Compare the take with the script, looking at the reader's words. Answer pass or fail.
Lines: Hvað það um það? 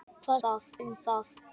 pass